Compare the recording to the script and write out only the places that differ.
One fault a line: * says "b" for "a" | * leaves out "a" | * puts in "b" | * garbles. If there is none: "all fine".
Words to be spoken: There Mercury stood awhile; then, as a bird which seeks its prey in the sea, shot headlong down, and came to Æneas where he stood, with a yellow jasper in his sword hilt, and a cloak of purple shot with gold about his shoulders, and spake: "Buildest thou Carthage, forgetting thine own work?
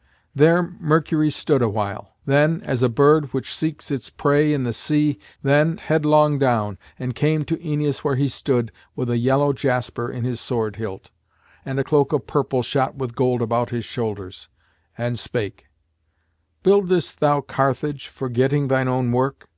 * says "then" for "shot"